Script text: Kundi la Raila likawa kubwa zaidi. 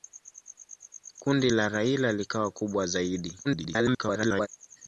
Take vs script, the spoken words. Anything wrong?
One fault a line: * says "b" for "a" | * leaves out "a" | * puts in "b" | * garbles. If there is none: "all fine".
* garbles